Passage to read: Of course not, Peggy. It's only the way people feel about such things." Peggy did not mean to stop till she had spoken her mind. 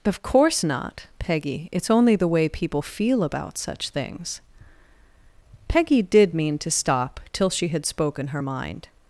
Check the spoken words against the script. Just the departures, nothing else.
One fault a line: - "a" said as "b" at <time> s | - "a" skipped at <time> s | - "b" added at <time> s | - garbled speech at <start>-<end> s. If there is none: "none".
- "not" skipped at 6.4 s